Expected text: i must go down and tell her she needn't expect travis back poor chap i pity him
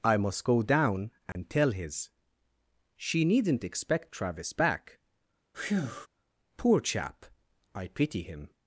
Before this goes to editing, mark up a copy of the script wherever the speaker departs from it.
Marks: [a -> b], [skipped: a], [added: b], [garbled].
i must go down and tell [her -> his] she needn't expect travis back poor chap i pity him